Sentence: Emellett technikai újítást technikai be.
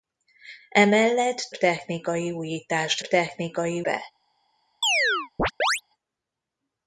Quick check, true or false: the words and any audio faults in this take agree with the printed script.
false